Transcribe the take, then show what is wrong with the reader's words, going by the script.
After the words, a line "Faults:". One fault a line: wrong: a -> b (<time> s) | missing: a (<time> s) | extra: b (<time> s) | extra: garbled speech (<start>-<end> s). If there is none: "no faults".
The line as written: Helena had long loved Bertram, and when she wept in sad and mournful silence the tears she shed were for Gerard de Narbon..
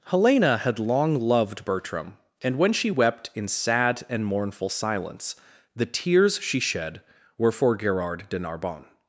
Helena had long loved Bertram, and when she wept in sad and mournful silence the tears she shed were for Gerard de Narbon..
Faults:
no faults